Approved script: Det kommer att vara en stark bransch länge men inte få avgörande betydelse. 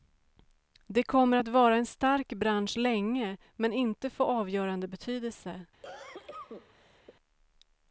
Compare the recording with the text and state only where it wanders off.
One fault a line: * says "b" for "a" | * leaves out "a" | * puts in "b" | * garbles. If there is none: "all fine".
all fine